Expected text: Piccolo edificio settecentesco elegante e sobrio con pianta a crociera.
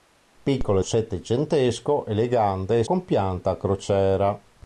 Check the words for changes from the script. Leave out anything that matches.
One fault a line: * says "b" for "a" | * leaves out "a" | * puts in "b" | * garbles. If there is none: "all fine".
* leaves out "edificio"
* leaves out "sobrio"